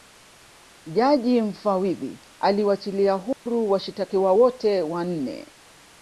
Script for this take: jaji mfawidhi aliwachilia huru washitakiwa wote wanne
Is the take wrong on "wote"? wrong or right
right